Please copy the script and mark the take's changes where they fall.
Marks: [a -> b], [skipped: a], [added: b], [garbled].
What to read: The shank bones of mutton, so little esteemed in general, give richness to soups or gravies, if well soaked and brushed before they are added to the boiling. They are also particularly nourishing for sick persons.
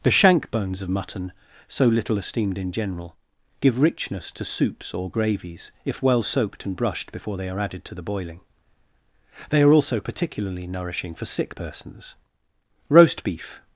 The shank bones of mutton, so little esteemed in general, give richness to soups or gravies, if well soaked and brushed before they are added to the boiling. They are also particularly nourishing for sick persons. [added: Roast beef]